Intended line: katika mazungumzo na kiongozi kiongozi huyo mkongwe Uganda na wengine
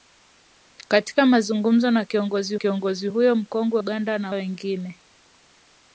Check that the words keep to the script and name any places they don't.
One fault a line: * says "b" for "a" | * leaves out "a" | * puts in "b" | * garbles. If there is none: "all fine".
all fine